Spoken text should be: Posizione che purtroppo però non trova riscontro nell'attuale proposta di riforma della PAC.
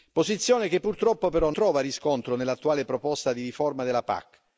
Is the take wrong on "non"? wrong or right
wrong